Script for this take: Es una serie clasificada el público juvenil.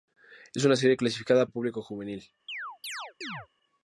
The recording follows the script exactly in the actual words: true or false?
true